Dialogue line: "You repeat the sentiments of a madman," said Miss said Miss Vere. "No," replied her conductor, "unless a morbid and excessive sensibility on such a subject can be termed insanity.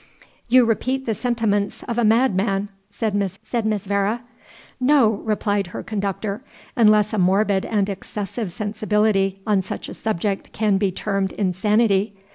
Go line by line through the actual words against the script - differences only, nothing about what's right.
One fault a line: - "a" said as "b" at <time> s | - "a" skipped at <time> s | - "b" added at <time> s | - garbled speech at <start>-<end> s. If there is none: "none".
none